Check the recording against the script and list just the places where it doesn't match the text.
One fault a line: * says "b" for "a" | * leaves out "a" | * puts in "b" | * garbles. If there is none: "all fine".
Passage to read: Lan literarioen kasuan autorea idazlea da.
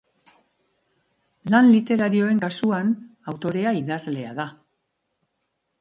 all fine